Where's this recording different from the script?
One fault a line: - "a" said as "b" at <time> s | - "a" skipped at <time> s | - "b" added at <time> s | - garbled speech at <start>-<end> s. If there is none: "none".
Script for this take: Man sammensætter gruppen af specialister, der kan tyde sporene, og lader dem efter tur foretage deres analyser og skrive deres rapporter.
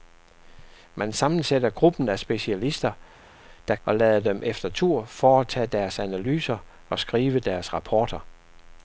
- "kan tyde sporene" skipped at 3.8 s